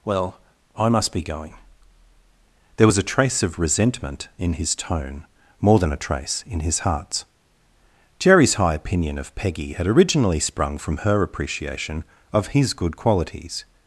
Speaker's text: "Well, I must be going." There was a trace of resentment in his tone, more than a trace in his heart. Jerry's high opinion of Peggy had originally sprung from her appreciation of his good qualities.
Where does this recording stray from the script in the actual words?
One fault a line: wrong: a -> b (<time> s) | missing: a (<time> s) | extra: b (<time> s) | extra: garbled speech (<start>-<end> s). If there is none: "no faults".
wrong: heart -> hearts (6.8 s)